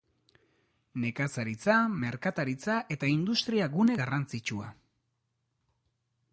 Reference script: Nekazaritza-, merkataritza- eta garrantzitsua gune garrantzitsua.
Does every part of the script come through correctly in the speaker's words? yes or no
no